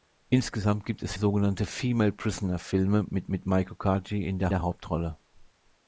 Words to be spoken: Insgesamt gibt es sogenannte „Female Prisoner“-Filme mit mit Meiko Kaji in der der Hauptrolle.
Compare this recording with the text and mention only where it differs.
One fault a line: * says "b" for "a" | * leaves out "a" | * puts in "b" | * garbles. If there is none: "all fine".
all fine